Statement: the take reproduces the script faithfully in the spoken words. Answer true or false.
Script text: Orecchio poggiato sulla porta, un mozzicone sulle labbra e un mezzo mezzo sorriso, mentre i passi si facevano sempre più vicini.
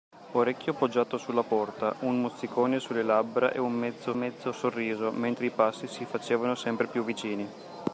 true